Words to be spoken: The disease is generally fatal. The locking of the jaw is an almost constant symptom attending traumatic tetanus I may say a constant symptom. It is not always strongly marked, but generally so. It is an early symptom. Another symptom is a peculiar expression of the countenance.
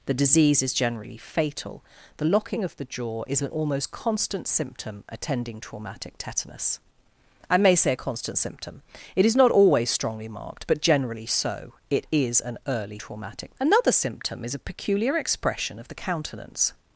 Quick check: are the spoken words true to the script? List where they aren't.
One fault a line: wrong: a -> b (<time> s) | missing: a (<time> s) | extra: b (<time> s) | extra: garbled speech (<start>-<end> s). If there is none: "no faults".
wrong: symptom -> traumatic (13.0 s)